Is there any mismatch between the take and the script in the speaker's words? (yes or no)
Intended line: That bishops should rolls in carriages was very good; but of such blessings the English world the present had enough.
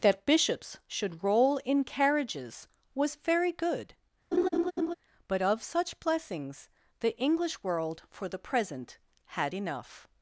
yes